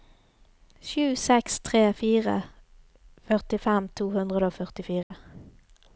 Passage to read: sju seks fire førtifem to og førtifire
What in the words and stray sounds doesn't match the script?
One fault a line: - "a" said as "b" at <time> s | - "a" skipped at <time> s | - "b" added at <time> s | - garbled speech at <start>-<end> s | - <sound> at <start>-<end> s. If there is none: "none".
- "tre" added at 1.7 s
- "hundre" added at 4.2 s
- dropout at 5.0-5.1 s